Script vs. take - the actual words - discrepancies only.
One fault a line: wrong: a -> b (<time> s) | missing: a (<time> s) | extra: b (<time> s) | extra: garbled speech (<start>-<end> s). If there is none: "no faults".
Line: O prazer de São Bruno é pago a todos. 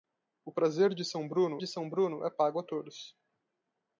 extra: de São Bruno (1.6 s)